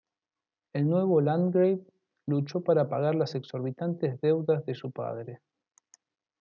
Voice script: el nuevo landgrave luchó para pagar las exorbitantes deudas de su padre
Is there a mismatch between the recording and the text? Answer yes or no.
no